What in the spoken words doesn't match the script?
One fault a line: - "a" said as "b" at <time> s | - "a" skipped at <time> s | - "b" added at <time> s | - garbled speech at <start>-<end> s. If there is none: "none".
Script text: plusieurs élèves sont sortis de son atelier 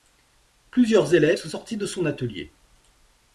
none